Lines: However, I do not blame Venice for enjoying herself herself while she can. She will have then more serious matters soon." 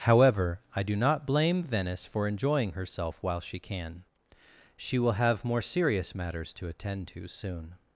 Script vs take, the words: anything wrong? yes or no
yes